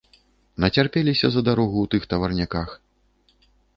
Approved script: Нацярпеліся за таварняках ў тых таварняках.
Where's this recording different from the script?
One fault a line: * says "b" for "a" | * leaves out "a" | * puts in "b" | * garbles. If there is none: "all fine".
* says "дарогу" for "таварняках"